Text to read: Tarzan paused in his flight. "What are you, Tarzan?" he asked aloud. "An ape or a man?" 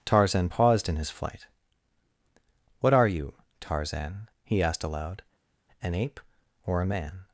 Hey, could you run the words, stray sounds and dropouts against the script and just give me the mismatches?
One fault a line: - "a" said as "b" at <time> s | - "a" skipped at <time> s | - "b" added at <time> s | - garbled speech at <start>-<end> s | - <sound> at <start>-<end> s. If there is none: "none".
none